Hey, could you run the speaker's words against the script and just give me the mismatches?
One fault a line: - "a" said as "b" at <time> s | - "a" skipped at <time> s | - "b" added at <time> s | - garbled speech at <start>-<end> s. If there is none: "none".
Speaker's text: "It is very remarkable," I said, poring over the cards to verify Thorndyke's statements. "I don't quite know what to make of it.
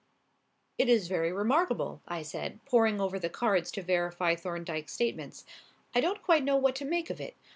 none